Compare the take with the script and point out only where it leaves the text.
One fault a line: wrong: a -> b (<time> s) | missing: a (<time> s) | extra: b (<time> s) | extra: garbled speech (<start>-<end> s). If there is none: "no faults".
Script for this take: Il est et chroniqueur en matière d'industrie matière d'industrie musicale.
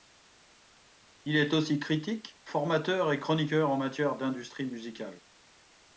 extra: aussi critique formateur (1.5 s)
missing: matière d'industrie (4.7 s)